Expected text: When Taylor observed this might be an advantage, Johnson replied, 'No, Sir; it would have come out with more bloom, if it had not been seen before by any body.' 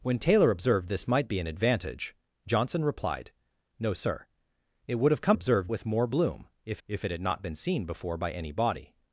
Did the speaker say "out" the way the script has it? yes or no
no